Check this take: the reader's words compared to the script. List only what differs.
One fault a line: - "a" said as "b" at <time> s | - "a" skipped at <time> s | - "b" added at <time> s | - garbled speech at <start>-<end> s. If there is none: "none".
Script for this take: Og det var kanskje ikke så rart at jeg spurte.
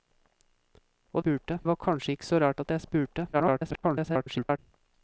- "det" said as "spurte" at 1.2 s
- garbled speech at 3.3-4.6 s